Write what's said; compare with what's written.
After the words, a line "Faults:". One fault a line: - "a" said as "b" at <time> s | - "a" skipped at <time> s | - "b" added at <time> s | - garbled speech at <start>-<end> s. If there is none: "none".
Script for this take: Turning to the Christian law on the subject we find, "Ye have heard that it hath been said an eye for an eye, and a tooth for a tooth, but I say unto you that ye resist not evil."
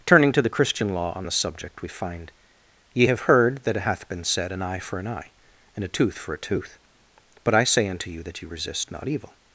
Turning to the Christian law on the subject we find, "Ye have heard that it hath been said an eye for an eye, and a tooth for a tooth, but I say unto you that ye resist not evil."
Faults:
none